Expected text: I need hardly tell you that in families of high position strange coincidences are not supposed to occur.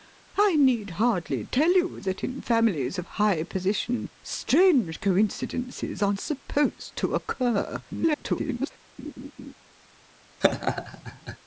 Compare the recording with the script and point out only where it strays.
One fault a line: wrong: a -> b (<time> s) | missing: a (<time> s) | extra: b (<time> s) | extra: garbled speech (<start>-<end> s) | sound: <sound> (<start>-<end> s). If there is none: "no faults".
missing: not (6.2 s)
extra: garbled speech (7.9-8.7 s)
sound: laugh (9.0-9.5 s)
sound: laugh (10.4-11.4 s)